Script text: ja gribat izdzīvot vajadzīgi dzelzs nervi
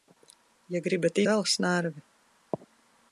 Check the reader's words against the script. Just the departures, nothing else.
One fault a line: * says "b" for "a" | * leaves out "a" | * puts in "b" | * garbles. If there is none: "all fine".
* leaves out "izdzīvot vajadzīgi"